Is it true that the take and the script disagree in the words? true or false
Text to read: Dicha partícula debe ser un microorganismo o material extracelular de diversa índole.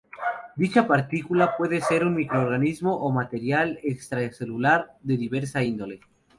true